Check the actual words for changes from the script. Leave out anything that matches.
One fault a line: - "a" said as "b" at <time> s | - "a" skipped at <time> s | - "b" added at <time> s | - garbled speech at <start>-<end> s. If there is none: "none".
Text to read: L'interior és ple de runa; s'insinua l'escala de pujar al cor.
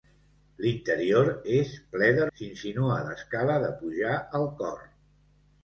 - "runa" skipped at 2.2 s